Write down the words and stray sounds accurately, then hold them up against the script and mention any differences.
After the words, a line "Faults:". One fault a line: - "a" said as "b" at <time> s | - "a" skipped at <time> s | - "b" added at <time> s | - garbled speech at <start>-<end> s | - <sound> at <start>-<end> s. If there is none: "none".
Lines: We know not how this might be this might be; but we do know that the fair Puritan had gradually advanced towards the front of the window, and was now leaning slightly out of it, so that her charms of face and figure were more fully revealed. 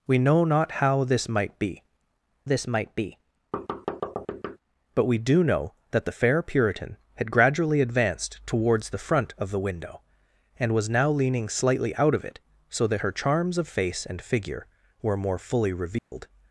We know not how this might be this might be; but we do know that the fair Puritan had gradually advanced towards the front of the window, and was now leaning slightly out of it, so that her charms of face and figure were more fully revealed.
Faults:
- thud at 3.5-4.6 s
- dropout at 16.0-16.1 s